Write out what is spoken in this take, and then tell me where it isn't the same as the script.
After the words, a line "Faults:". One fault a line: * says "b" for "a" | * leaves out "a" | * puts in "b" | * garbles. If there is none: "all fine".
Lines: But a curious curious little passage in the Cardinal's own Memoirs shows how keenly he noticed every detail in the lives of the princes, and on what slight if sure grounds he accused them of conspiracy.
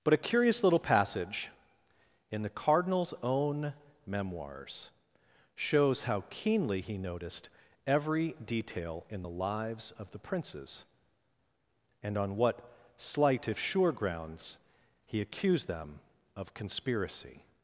But a curious little passage in the Cardinal's own Memoirs shows how keenly he noticed every detail in the lives of the princes, and on what slight if sure grounds he accused them of conspiracy.
Faults:
* leaves out "curious"